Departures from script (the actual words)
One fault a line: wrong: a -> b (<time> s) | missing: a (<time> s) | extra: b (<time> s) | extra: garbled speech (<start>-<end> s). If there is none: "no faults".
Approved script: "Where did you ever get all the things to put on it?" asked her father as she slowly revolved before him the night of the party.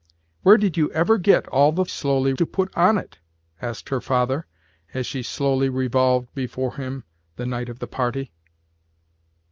wrong: things -> slowly (1.9 s)